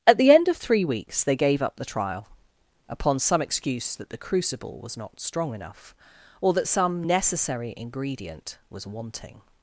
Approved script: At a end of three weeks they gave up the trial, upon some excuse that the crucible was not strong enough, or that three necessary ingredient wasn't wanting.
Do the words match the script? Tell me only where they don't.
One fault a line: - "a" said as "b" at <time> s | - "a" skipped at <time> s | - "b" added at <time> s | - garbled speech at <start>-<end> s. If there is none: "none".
- "a" said as "the" at 0.2 s
- "three" said as "some" at 6.7 s
- "wasn't" said as "was" at 8.7 s